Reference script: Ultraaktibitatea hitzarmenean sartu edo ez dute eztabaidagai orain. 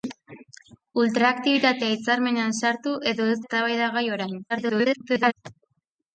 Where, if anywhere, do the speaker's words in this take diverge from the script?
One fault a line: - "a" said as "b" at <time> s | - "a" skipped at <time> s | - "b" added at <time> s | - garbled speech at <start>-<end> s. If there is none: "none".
- "dute" skipped at 3.4 s
- garbled speech at 4.5-5.3 s